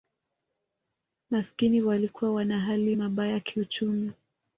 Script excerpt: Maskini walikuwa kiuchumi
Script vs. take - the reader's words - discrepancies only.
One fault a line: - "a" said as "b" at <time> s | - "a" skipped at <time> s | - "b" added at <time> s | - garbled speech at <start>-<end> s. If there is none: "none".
- "wana hali mabaya" added at 2.3 s